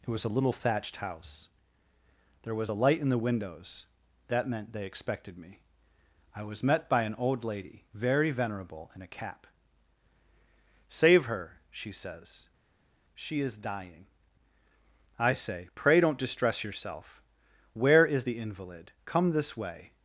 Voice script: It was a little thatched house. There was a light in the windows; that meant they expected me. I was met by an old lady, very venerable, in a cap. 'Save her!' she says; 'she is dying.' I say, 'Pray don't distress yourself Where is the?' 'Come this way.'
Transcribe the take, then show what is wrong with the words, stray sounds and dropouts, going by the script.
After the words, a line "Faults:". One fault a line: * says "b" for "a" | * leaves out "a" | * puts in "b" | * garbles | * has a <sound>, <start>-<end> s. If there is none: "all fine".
It was a little thatched house. There was a light in the windows; that meant they expected me. I was met by an old lady, very venerable, in a cap. 'Save her!' she says; 'she is dying.' I say, 'Pray don't distress yourself Where is the invalid?' 'Come this way.'
Faults:
* puts in "invalid"